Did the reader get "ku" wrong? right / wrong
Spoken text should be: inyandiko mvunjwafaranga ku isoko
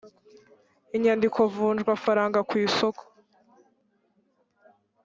right